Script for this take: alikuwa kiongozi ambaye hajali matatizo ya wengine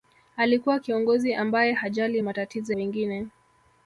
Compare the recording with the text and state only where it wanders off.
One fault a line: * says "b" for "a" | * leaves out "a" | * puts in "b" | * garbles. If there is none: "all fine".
* leaves out "ya"